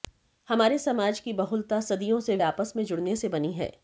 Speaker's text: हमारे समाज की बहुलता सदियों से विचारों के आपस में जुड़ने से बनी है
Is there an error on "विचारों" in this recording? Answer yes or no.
yes